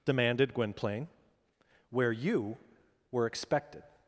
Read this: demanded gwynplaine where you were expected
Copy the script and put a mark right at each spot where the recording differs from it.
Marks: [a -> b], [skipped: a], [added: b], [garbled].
demanded gwynplaine where you were expected